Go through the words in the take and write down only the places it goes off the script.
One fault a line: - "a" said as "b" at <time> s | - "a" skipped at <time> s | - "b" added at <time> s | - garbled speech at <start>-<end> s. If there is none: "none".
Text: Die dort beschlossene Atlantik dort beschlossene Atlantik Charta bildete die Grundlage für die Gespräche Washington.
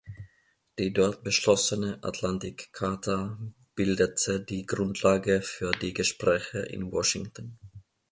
- "dort beschlossene Atlantik" skipped at 2.7 s
- "in" added at 6.6 s